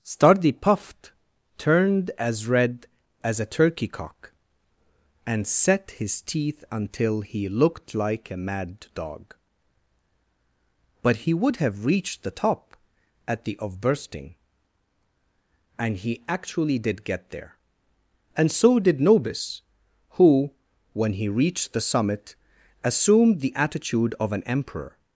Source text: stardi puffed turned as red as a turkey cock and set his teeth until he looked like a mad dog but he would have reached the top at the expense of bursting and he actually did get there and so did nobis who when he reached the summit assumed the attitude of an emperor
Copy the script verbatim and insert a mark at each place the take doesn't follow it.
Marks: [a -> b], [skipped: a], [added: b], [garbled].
stardi puffed turned as red as a turkey cock and set his teeth until he looked like a mad dog but he would have reached the top at the [skipped: expense] of bursting and he actually did get there and so did nobis who when he reached the summit assumed the attitude of an emperor